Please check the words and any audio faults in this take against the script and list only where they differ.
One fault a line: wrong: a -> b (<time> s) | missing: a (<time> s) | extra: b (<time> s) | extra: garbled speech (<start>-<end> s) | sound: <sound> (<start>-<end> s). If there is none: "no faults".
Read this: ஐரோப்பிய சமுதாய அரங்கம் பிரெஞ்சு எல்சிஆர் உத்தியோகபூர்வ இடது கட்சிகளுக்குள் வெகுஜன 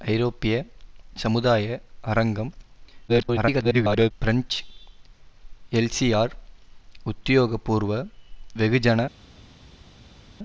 extra: garbled speech (3.1-4.1 s)
missing: இடது கட்சிகளுக்குள் (7.9 s)